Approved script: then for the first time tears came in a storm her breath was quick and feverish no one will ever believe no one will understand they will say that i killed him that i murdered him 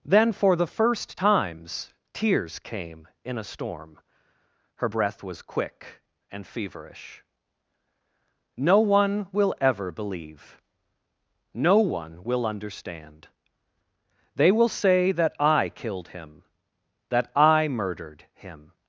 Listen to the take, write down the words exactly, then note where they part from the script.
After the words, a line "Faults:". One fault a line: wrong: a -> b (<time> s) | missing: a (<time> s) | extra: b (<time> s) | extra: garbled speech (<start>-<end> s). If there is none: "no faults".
then for the first times tears came in a storm her breath was quick and feverish no one will ever believe no one will understand they will say that i killed him that i murdered him
Faults:
wrong: time -> times (1.1 s)